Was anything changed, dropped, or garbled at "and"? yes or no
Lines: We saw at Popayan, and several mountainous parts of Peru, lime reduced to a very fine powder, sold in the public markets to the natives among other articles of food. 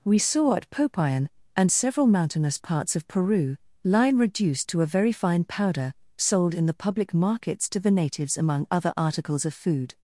no